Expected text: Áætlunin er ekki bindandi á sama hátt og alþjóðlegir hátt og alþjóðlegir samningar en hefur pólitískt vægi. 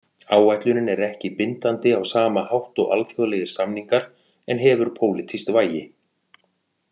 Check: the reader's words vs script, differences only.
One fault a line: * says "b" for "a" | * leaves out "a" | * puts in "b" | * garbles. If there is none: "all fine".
* leaves out "hátt og alþjóðlegir"